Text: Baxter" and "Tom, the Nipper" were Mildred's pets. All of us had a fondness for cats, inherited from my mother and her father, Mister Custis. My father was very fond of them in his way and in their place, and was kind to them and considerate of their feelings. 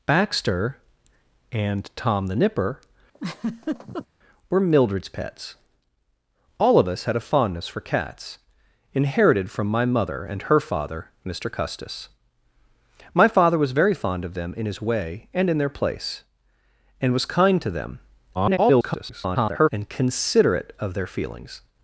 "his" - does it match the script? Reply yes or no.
yes